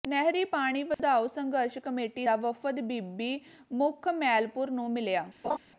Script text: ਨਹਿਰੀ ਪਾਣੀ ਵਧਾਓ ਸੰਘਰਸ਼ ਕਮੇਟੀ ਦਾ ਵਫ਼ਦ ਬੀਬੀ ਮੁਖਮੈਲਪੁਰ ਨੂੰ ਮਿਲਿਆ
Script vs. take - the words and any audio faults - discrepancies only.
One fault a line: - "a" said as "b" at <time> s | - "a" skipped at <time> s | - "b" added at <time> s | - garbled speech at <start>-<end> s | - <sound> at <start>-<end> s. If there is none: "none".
- dropout at 0.9-1.0 s
- laugh at 5.4-5.6 s